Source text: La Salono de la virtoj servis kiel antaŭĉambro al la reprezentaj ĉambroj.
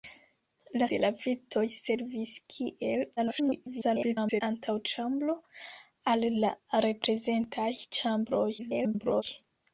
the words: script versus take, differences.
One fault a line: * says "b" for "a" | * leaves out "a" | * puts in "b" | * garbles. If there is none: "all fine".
* leaves out "Salono"
* garbles
* garbles